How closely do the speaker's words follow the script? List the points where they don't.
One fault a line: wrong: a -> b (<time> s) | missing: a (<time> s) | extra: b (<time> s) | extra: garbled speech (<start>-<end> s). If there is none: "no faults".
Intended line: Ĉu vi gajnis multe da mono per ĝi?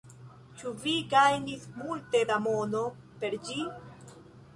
no faults